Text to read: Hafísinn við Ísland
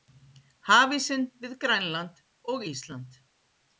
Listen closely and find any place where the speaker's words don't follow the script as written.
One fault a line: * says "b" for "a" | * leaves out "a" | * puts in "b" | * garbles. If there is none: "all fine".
* puts in "Grænland og"